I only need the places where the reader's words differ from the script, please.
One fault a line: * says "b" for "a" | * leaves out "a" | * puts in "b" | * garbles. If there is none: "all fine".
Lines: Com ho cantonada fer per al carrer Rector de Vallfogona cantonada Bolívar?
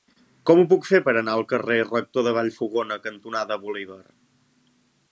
* says "puc" for "cantonada"
* puts in "anar"